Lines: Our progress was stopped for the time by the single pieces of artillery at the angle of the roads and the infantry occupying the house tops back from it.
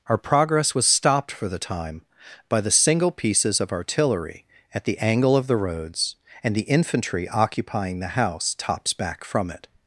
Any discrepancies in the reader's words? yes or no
no